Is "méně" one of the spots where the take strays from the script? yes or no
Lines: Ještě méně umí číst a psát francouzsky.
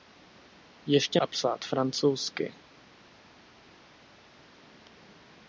yes